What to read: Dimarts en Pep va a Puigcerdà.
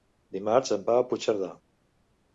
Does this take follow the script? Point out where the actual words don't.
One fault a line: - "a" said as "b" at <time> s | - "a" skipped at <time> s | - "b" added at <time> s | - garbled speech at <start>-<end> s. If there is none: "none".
- "Pep" skipped at 0.9 s